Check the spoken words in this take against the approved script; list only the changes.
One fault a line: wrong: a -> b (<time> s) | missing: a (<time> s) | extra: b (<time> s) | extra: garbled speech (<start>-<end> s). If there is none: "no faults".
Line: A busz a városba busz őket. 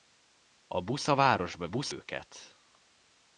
no faults